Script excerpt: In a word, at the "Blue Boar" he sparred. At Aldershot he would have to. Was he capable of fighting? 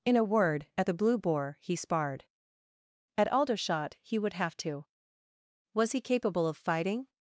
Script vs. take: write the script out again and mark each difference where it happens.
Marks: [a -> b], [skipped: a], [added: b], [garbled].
In a word, at the "Blue Boar" he sparred. At Aldershot he would have to. Was he capable of fighting?